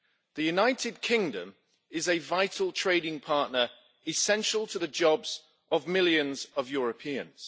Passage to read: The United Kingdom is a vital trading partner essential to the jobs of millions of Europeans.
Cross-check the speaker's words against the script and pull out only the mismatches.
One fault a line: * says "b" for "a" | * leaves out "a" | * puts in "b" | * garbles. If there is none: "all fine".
all fine